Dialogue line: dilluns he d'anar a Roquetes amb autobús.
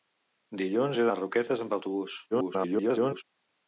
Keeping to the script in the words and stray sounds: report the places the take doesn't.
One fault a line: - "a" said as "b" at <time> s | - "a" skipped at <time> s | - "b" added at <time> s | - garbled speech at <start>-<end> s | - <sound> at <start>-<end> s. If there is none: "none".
- "d'anar" skipped at 1.1 s
- garbled speech at 2.3-3.2 s